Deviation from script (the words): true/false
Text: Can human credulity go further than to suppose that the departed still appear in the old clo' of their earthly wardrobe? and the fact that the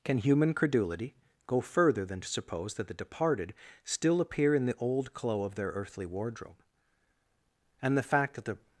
false